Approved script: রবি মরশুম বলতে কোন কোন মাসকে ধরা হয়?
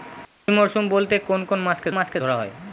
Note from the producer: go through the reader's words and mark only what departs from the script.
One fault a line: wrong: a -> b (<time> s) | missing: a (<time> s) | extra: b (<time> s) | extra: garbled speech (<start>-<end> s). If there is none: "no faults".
extra: মাসকে (1.9 s)